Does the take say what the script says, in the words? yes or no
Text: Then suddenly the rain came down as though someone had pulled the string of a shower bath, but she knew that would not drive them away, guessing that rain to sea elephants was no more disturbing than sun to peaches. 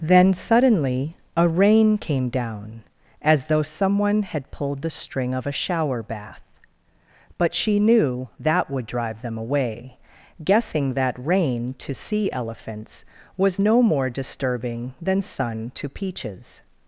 no